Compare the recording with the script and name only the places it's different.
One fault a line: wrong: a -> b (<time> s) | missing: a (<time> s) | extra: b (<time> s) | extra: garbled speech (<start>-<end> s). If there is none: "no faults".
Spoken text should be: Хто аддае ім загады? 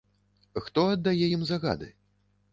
no faults